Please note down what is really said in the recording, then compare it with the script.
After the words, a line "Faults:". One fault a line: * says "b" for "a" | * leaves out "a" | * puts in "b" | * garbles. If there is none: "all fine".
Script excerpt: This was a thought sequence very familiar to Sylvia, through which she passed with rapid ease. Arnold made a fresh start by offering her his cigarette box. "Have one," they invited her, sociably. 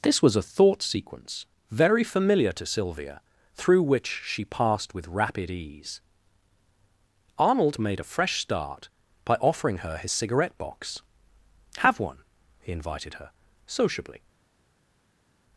This was a thought sequence very familiar to Sylvia, through which she passed with rapid ease. Arnold made a fresh start by offering her his cigarette box. "Have one," he invited her, sociably.
Faults:
* says "he" for "they"